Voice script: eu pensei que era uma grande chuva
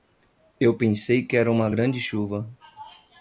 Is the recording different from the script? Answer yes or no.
no